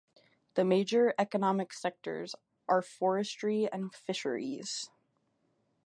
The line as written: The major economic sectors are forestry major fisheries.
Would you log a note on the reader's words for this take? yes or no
yes